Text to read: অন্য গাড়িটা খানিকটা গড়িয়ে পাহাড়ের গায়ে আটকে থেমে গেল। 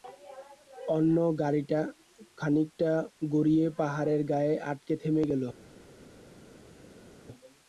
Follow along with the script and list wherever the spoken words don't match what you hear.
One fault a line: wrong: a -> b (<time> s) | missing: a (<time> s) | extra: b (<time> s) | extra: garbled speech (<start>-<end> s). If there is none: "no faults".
no faults